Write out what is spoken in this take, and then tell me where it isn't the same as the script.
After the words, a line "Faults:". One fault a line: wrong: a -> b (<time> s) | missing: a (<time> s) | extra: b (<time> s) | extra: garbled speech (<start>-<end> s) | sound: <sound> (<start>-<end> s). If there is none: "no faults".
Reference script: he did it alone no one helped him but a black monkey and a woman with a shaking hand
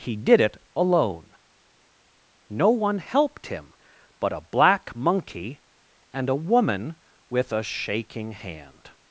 he did it alone no one helped him but a black monkey and a woman with a shaking hand
Faults:
no faults